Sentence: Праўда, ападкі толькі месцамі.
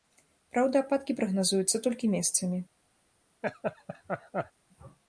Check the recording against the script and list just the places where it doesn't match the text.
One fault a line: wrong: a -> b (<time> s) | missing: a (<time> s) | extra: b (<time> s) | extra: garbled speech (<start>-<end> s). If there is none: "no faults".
extra: прагназуюцца (1.2 s)